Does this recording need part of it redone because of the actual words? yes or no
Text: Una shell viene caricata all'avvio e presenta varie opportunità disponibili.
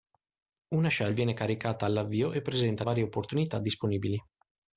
no